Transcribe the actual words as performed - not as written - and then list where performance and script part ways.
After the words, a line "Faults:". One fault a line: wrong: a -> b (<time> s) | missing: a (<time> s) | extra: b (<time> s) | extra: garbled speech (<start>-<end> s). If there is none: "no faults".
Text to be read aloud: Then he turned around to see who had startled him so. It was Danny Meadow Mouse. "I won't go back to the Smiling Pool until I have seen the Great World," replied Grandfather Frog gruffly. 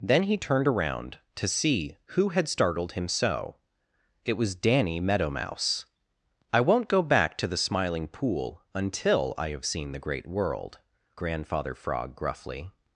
Then he turned around to see who had startled him so. It was Danny Meadow Mouse. "I won't go back to the Smiling Pool until I have seen the Great World," Grandfather Frog gruffly.
Faults:
missing: replied (10.8 s)